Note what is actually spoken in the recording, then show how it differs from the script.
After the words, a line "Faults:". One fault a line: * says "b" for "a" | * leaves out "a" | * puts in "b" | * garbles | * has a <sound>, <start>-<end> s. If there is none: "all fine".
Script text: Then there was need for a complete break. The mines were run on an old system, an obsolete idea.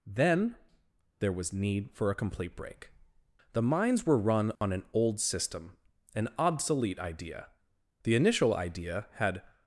Then there was need for a complete break. The mines were run on an old system, an obsolete idea. The initial idea had
Faults:
* has a dropout, 4.6-4.6 s
* puts in "The initial idea had"